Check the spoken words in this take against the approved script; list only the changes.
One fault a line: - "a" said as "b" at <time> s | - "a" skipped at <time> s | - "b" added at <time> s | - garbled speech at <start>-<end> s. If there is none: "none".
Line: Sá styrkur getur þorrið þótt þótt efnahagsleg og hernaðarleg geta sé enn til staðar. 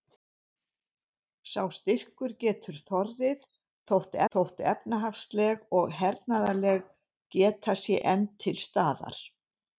none